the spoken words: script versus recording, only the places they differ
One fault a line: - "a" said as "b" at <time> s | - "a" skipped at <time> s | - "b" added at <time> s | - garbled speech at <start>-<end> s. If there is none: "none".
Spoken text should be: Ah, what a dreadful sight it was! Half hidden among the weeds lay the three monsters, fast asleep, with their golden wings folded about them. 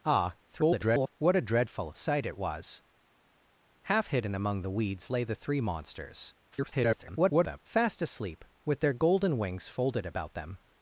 - garbled speech at 0.5-1.1 s
- garbled speech at 6.5-7.6 s